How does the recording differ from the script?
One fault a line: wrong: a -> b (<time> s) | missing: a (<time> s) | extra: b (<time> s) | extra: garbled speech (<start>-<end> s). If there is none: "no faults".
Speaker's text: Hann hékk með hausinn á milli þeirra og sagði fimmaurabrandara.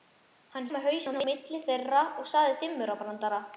missing: hékk (0.7 s)